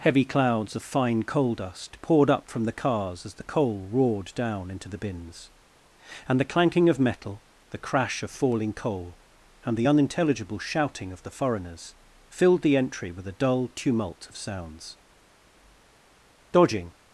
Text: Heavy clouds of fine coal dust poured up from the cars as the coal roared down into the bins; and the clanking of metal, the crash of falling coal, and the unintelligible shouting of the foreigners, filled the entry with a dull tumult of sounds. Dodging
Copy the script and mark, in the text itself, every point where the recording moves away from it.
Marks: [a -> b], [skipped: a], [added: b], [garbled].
Heavy clouds of fine coal dust poured up from the cars as the coal roared down into the bins; and the clanking of metal, the crash of falling coal, and the unintelligible shouting of the foreigners, filled the entry with a dull tumult of sounds. Dodging